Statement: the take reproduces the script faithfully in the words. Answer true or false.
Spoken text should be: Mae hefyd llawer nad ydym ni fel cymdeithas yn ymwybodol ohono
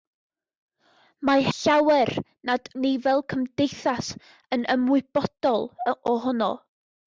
false